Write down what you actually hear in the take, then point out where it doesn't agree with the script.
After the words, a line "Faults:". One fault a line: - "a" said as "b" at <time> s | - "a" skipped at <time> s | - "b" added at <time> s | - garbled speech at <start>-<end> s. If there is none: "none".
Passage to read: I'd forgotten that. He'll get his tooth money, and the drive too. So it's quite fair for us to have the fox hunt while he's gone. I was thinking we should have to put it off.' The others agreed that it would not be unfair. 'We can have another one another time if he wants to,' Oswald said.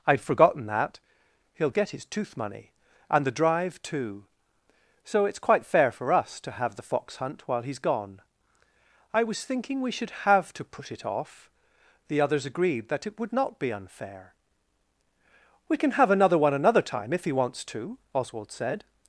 I'd forgotten that. He'll get his tooth money, and the drive too. So it's quite fair for us to have the fox hunt while he's gone. I was thinking we should have to put it off.' The others agreed that it would not be unfair. 'We can have another one another time if he wants to,' Oswald said.
Faults:
none